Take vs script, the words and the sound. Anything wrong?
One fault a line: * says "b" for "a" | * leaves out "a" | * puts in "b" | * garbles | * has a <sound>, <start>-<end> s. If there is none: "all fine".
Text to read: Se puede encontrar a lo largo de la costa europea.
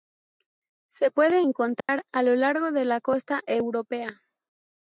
* has a dropout, 1.8-1.9 s